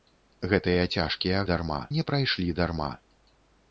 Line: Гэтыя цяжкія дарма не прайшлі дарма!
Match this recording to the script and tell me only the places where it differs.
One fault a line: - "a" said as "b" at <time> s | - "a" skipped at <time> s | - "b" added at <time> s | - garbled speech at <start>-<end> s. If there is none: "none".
none